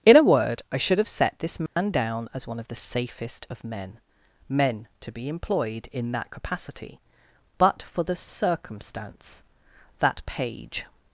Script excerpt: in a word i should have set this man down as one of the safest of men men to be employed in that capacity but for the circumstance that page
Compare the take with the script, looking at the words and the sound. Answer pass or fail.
fail